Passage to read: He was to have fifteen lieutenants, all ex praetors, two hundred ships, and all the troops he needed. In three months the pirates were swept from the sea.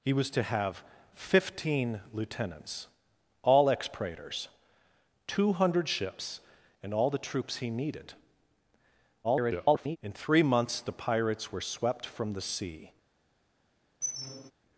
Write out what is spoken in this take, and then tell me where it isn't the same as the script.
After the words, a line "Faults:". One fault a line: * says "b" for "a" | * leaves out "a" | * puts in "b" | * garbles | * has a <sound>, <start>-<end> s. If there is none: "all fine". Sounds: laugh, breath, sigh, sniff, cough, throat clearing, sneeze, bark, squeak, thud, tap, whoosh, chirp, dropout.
He was to have fifteen lieutenants, all ex praetors, two hundred ships, and all the troops he needed. [garbled] In three months the pirates were swept from the sea.
Faults:
* garbles
* has a squeak, 14.0-14.5 s